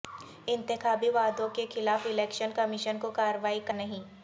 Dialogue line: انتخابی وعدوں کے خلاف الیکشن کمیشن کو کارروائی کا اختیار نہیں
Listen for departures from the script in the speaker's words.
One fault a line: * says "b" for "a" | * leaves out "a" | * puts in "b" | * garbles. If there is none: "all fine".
* leaves out "اختیار"